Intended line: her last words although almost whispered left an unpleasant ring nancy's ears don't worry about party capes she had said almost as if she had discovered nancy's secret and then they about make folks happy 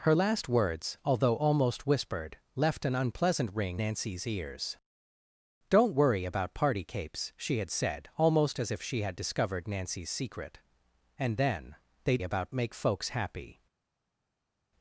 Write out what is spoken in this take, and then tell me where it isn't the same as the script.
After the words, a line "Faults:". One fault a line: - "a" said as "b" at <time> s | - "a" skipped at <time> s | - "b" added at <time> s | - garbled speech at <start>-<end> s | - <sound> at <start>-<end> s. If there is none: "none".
her last words although almost whispered left an unpleasant ring nancy's ears don't worry about party capes she had said almost as if she had discovered nancy's secret and then they about make folks happy
Faults:
none